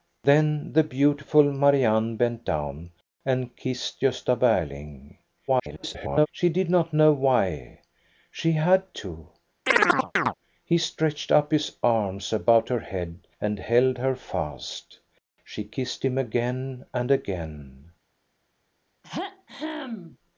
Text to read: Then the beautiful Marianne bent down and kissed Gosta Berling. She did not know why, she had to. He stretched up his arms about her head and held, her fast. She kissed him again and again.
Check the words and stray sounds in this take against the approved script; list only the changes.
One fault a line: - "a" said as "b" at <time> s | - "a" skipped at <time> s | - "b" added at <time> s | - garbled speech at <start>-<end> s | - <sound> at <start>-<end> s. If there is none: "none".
- garbled speech at 5.5-6.3 s
- chirp at 9.7-10.3 s
- throat clearing at 19.0-20.2 s